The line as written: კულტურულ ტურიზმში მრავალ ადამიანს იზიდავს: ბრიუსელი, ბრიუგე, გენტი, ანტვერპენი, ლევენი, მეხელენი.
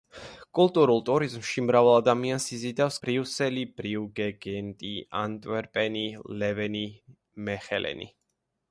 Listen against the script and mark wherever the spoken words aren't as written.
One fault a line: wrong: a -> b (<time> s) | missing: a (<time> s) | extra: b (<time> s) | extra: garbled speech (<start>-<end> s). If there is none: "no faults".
no faults